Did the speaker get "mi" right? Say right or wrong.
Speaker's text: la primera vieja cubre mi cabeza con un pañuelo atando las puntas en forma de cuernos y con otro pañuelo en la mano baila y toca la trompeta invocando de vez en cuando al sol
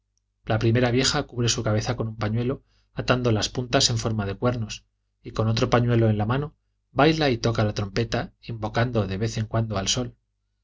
wrong